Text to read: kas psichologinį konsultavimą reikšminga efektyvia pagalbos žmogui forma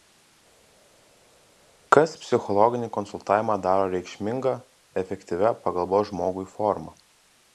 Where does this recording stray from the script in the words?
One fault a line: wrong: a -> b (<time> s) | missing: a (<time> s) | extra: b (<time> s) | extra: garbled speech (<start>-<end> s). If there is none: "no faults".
extra: daro (3.7 s)